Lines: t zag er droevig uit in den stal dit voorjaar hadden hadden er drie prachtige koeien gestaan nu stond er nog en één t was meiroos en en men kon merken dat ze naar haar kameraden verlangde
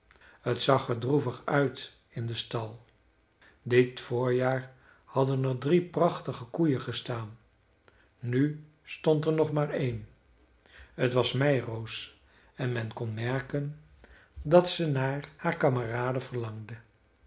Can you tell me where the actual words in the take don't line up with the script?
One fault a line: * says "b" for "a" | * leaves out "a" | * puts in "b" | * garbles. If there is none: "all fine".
* leaves out "hadden"
* says "maar" for "en"
* leaves out "en"